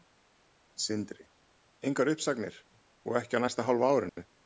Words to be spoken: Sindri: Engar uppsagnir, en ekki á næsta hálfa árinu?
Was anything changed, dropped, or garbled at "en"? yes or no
yes